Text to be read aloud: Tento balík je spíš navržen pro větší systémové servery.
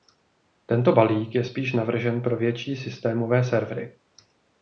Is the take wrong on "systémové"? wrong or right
right